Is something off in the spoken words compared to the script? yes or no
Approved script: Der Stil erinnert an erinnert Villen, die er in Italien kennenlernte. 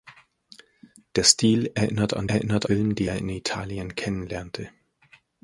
no